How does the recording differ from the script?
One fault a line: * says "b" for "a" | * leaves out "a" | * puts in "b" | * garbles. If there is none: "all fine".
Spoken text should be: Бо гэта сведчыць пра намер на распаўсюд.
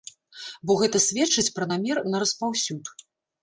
all fine